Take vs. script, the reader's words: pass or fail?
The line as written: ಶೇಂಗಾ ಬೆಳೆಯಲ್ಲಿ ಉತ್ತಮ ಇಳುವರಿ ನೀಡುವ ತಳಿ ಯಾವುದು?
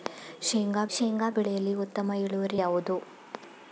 fail